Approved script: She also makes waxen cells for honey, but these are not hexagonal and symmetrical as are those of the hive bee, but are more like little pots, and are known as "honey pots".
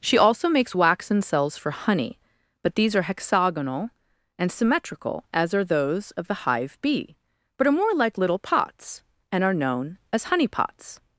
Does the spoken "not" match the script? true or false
false